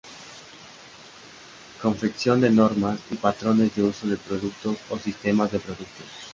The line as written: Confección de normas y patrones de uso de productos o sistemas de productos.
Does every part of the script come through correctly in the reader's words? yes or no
yes